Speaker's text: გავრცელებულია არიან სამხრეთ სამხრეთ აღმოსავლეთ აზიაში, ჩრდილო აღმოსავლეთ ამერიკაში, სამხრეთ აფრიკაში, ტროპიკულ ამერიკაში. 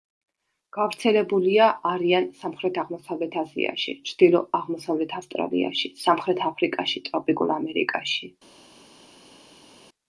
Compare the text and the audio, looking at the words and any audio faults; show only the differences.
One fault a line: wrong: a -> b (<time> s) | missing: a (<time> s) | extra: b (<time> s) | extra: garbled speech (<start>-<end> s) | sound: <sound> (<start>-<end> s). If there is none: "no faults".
missing: სამხრეთ (2.8 s)
wrong: ამერიკაში -> ავსტრალიაში (5.2 s)